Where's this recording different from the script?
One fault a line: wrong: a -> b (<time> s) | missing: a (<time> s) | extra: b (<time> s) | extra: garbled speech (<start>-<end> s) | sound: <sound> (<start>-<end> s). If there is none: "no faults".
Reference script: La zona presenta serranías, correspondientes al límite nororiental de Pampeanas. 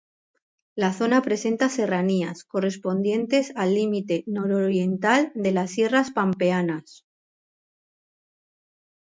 extra: las Sierras (5.5 s)